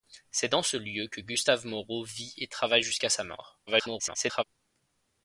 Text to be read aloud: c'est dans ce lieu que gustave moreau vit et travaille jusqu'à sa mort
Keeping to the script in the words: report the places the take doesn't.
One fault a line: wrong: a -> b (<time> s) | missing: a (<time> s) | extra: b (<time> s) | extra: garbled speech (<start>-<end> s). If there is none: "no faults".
extra: garbled speech (3.7-4.4 s)